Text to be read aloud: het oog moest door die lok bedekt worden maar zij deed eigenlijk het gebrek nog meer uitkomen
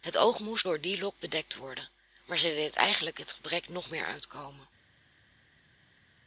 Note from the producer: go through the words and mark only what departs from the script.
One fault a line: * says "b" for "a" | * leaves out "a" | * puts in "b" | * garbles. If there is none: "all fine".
all fine